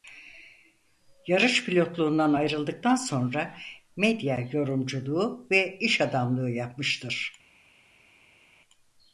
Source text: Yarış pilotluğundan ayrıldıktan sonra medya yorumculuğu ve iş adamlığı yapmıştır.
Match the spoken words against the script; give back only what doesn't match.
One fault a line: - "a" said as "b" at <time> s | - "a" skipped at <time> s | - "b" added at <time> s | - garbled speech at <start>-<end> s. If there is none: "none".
none